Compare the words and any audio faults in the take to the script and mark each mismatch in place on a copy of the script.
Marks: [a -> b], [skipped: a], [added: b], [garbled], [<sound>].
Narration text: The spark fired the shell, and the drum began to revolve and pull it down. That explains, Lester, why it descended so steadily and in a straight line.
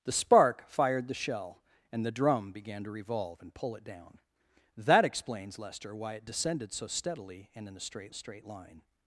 The spark fired the shell, and the drum began to revolve and pull it down. That explains, Lester, why it descended so steadily and in a straight [added: straight] line.